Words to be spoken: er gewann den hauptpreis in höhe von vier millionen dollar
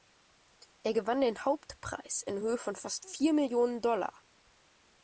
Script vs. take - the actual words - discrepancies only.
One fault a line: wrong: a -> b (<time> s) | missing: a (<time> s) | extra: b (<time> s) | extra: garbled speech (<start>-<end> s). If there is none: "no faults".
extra: fast (2.7 s)